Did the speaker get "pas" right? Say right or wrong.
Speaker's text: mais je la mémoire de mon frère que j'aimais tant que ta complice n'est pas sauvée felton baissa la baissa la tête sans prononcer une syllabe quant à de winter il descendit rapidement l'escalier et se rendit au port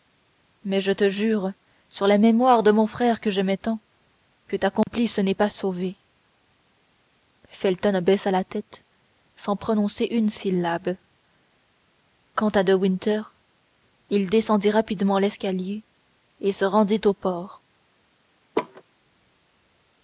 right